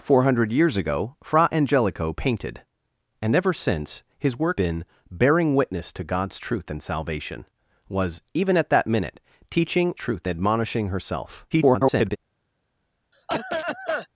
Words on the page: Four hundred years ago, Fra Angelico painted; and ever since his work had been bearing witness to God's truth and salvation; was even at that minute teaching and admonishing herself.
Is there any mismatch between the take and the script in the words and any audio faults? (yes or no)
yes